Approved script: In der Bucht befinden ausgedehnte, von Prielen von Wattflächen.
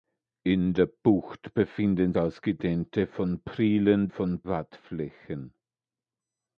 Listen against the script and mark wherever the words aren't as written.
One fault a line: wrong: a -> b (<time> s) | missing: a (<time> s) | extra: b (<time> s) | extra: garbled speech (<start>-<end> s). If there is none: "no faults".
no faults